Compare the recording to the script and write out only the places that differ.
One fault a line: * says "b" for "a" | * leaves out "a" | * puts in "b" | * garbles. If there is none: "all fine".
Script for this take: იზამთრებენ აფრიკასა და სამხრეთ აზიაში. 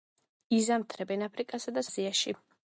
* leaves out "სამხრეთ"